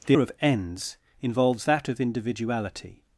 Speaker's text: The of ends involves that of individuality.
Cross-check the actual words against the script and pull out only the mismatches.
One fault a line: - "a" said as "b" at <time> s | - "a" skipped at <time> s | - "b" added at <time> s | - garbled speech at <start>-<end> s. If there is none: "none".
none